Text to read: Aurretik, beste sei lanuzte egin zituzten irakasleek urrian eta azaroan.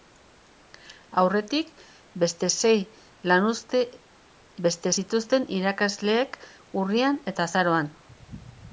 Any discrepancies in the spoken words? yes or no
yes